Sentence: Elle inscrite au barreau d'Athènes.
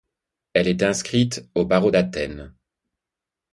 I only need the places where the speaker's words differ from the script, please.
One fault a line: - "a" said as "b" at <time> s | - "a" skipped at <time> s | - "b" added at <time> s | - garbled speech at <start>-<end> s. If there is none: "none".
- "est" added at 0.7 s